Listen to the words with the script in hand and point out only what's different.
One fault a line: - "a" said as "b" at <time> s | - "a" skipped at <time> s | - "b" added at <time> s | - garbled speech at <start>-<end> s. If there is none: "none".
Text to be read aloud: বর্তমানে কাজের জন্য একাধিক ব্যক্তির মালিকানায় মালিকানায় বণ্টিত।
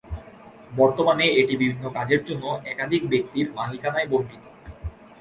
- "এটি বিভিন্ন" added at 1.4 s
- "মালিকানায়" skipped at 4.1 s